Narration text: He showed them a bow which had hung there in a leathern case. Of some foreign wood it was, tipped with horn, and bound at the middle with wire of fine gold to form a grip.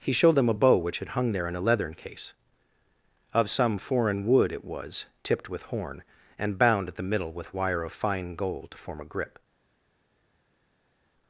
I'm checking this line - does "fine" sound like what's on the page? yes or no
yes